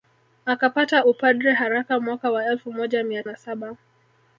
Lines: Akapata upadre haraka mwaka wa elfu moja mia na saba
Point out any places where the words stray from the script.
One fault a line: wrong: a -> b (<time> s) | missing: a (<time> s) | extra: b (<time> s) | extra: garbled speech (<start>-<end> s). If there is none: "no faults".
no faults